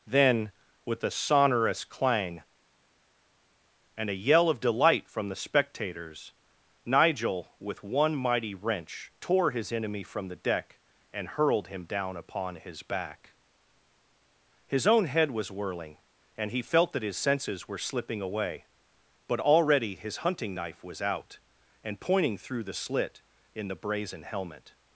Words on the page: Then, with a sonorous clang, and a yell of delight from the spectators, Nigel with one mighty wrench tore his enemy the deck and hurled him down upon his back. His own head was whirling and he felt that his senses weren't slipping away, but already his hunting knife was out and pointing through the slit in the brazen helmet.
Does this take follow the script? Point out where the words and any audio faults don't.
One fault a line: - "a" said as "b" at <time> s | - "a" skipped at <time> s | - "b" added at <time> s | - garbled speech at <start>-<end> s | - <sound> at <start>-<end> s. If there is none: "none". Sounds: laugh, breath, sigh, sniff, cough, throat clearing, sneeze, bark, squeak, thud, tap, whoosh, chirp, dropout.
- "from" added at 10.0 s
- "weren't" said as "were" at 17.7 s